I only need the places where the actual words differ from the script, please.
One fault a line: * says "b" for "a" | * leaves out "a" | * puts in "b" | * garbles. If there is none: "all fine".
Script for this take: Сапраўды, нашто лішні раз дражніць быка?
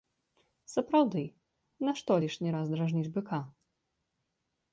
all fine